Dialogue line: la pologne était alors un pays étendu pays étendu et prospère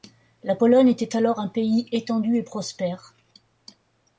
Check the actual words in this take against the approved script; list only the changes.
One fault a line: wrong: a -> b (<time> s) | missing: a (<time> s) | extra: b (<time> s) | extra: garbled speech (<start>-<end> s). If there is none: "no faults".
missing: pays étendu (2.4 s)